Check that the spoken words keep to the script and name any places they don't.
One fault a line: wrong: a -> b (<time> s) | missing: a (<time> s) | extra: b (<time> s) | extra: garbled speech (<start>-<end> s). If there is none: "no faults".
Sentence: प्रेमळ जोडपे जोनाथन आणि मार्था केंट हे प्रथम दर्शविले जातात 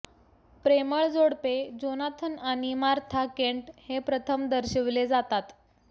no faults